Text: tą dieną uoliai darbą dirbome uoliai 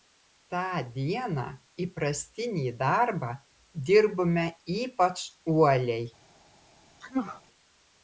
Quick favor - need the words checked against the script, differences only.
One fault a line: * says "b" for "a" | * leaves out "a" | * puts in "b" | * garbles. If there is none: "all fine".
* says "įprastinį" for "uoliai"
* puts in "ypač"